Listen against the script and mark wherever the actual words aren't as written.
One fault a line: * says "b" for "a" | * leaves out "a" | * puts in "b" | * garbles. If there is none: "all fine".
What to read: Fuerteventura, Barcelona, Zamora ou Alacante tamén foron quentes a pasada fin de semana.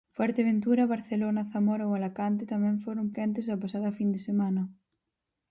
all fine